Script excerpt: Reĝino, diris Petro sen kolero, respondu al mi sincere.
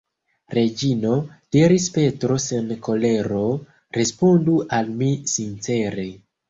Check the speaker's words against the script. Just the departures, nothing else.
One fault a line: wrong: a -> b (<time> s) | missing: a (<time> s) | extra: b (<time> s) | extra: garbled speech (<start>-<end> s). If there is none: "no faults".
no faults